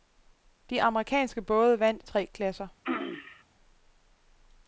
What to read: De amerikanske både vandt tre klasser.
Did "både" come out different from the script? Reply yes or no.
no